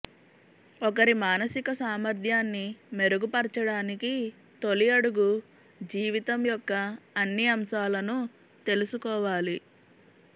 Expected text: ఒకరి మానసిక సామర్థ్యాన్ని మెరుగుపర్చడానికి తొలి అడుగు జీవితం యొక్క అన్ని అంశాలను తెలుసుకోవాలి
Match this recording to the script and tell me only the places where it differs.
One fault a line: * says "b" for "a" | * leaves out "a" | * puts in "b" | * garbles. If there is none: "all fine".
all fine